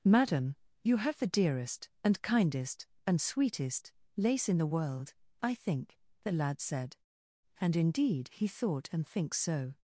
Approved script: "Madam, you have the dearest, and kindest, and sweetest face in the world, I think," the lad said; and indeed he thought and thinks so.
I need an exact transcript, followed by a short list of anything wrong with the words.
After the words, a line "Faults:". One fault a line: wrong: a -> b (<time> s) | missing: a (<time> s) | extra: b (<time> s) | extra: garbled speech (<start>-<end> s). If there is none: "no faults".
"Madam, you have the dearest, and kindest, and sweetest lace in the world, I think," the lad said; and indeed he thought and thinks so.
Faults:
wrong: face -> lace (4.2 s)